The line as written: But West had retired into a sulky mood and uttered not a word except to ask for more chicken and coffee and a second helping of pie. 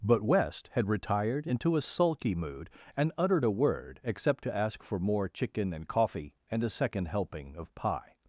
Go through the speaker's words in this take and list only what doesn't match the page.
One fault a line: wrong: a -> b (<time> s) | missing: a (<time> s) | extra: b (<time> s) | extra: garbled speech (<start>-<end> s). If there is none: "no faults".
missing: not (3.5 s)